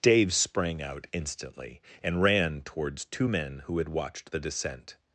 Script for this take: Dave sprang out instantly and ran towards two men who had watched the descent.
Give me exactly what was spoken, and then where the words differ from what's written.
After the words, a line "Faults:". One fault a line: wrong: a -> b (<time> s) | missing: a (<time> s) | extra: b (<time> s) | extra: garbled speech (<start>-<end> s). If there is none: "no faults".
Dave sprang out instantly and ran towards two men who had watched the descent.
Faults:
no faults